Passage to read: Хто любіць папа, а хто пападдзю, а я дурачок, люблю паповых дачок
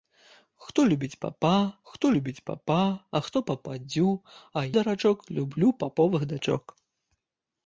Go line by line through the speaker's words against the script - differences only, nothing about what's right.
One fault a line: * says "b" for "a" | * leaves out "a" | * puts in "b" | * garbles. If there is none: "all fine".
* puts in "хто любіць папа"
* leaves out "я"